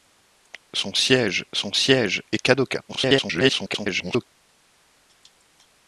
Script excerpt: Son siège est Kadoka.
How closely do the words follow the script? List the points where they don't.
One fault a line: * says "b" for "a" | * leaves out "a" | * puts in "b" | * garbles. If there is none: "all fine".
* puts in "son siège"
* garbles